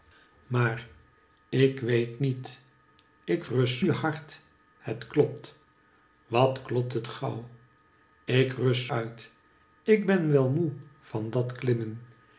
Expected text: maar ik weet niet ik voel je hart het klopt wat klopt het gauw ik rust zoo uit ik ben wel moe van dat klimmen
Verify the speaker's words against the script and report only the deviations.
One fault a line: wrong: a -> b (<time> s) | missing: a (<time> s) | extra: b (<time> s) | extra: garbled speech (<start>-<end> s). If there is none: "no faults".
wrong: voel -> rust (3.4 s)
missing: zoo (8.9 s)